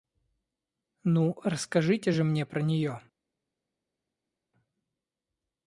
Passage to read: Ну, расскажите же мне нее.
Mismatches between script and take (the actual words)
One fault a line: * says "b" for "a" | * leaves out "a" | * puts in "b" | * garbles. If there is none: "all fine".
* puts in "про"